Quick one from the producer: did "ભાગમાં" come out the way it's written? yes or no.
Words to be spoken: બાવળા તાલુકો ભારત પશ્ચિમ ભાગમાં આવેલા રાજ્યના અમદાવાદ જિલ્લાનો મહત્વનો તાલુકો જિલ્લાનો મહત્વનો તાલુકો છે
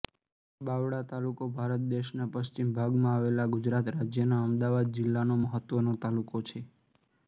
yes